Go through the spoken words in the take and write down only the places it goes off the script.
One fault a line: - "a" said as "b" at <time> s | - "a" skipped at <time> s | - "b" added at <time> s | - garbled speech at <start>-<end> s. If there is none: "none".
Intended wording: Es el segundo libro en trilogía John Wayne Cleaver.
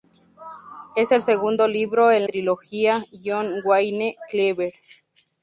none